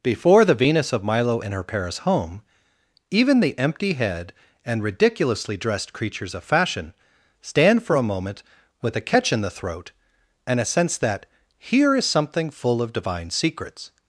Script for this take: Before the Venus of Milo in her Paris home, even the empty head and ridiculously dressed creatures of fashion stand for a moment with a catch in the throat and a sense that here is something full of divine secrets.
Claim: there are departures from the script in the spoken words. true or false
false